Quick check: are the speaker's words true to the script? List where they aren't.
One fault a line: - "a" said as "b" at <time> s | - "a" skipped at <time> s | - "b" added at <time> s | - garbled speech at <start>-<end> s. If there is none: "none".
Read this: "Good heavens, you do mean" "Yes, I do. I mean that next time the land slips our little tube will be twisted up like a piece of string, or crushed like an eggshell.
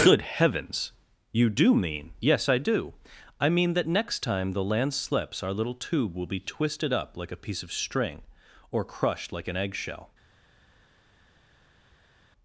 none